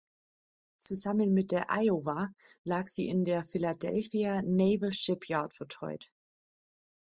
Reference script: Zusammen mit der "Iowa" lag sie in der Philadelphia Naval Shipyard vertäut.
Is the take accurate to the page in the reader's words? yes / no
yes